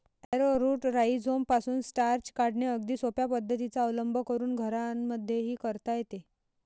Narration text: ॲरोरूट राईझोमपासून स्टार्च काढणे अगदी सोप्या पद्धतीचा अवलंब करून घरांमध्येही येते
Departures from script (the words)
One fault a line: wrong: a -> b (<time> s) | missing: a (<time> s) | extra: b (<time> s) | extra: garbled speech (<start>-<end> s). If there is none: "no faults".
extra: करता (5.6 s)